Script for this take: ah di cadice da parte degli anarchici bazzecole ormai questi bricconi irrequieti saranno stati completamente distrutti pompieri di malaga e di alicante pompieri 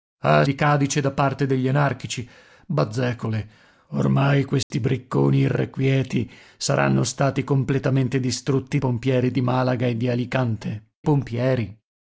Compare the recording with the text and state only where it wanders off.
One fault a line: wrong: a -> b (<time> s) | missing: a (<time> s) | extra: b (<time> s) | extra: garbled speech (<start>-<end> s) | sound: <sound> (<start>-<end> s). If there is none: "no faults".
sound: dropout (4.6-4.7 s)